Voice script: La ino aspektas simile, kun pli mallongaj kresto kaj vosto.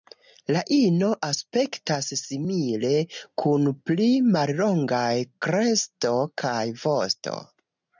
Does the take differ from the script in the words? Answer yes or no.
no